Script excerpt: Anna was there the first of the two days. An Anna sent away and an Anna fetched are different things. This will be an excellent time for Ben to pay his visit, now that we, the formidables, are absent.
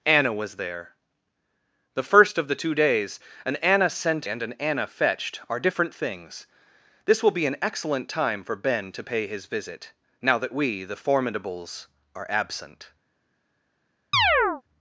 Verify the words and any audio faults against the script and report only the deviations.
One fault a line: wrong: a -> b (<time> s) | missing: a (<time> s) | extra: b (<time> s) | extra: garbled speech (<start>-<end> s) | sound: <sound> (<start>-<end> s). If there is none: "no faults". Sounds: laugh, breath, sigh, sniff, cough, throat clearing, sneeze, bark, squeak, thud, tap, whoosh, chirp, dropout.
missing: away (4.3 s)
sound: chirp (14.1-14.6 s)